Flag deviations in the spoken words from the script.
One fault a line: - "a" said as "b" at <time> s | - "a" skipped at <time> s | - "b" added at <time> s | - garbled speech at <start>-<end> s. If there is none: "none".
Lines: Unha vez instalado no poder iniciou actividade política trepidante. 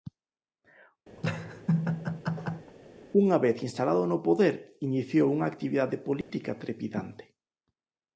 - "unha" added at 5.4 s